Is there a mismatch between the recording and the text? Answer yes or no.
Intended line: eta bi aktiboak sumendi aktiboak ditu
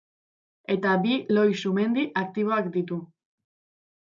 yes